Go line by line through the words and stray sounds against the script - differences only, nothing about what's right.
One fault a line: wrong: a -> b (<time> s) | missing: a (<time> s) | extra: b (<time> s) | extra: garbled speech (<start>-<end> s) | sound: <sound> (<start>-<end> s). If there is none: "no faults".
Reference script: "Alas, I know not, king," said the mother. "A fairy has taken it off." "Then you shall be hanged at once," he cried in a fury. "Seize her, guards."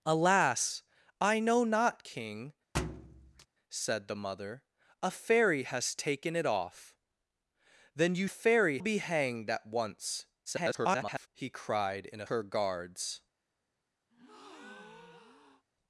sound: thud (2.7-3.5 s)
wrong: shall -> fairy (8.2 s)
extra: garbled speech (10.5-11.3 s)
missing: fury Seize (12.3 s)
sound: breath (14.1-15.6 s)